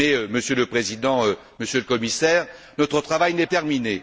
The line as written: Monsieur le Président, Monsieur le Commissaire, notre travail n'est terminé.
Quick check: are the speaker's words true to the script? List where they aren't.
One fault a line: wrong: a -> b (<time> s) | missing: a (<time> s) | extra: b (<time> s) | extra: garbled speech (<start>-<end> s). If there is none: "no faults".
no faults